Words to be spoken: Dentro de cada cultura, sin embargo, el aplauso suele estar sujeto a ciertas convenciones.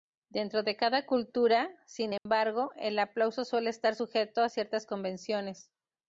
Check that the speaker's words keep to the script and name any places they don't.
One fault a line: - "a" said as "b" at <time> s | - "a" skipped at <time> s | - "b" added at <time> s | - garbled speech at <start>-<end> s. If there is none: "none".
none